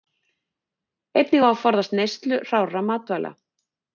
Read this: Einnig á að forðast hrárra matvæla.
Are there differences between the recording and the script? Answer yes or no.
yes